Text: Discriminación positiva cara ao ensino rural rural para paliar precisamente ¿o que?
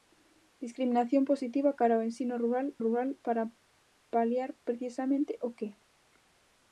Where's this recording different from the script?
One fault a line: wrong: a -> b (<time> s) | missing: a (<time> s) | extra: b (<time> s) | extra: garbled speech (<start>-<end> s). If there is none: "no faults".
no faults